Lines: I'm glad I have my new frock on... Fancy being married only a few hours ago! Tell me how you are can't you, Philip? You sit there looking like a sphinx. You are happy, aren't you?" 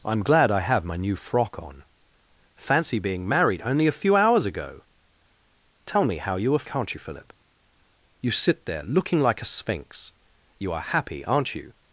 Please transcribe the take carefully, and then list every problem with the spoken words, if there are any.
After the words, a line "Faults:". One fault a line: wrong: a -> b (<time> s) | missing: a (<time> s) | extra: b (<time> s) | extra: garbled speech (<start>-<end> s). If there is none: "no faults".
I'm glad I have my new frock on... Fancy being married only a few hours ago! Tell me how you are can't you, Philip? You sit there looking like a sphinx. You are happy, aren't you?"
Faults:
no faults